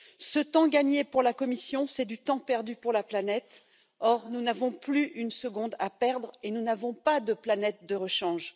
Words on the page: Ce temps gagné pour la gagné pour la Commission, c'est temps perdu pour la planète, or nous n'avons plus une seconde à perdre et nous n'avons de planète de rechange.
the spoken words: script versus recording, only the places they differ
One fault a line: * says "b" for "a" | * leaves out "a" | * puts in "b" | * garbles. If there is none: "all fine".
* leaves out "gagné pour la"
* puts in "du"
* puts in "pas"